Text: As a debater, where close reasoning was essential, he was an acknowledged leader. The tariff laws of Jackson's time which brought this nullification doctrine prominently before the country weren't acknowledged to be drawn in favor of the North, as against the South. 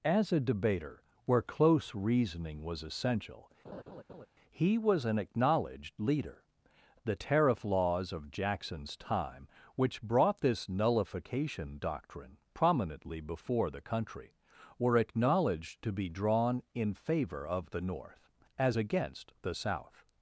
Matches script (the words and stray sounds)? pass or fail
fail